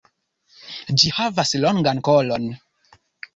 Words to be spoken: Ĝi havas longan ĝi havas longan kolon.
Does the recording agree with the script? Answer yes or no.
no